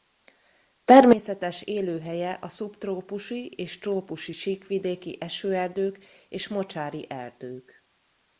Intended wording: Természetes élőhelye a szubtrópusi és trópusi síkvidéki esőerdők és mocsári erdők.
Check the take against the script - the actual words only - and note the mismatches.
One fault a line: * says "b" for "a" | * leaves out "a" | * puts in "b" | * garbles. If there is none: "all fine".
all fine